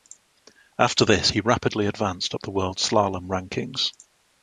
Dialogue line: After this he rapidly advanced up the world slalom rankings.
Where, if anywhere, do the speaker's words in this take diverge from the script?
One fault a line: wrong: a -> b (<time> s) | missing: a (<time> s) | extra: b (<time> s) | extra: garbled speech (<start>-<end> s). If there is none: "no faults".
no faults